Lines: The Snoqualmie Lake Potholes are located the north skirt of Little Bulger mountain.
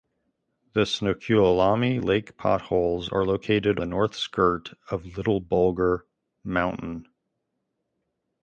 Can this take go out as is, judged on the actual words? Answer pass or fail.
pass